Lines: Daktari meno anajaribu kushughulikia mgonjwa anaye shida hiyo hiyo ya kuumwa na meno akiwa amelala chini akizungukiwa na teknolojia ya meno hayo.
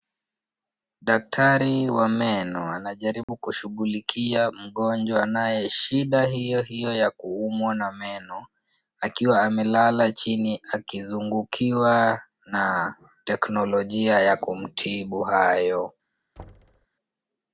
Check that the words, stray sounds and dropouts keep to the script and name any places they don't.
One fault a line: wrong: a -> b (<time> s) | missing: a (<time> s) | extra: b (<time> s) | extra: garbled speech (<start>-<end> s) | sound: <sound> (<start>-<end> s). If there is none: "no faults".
extra: wa (1.9 s)
sound: dropout (3.2-3.3 s)
wrong: meno -> kumtibu (14.4 s)
sound: thud (16.4-16.9 s)